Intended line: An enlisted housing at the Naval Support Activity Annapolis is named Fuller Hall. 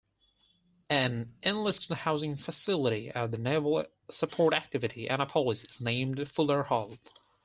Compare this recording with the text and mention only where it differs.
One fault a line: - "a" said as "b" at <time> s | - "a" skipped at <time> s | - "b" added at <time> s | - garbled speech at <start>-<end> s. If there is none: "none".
- "facility" added at 2.4 s